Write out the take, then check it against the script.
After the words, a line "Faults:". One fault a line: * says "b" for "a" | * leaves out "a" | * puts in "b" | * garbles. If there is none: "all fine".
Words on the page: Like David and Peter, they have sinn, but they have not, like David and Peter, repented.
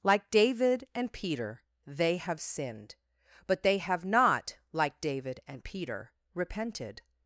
Like David and Peter, they have sinned, but they have not, like David and Peter, repented.
Faults:
* says "sinned" for "sinn"